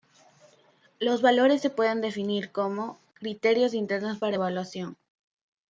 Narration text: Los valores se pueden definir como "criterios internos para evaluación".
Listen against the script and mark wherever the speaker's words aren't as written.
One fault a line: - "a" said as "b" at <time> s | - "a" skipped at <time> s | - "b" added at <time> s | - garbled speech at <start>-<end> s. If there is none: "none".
none